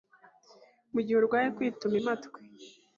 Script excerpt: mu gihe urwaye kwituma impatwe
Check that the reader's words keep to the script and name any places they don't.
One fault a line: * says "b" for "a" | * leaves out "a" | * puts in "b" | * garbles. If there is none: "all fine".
all fine